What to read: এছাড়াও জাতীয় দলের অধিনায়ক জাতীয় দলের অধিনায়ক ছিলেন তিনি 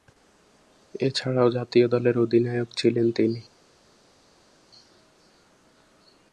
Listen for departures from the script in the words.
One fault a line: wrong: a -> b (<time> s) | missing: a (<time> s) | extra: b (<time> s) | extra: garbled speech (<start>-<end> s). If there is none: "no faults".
missing: জাতীয় দলের অধিনায়ক (2.7 s)